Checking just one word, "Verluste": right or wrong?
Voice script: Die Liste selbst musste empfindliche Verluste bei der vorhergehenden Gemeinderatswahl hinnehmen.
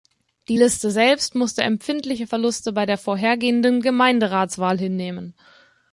right